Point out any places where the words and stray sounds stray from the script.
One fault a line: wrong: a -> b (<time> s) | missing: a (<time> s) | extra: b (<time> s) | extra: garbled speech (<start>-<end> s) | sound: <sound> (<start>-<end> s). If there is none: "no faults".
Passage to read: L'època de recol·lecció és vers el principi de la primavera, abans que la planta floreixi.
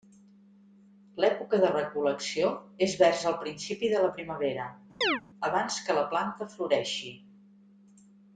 sound: chirp (5.0-5.2 s)